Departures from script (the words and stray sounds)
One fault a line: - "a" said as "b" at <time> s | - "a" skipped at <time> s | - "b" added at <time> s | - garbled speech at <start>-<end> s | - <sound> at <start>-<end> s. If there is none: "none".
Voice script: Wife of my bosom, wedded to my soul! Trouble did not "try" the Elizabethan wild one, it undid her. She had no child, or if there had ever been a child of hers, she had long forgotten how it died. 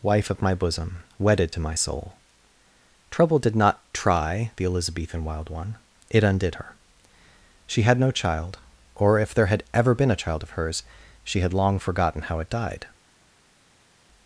none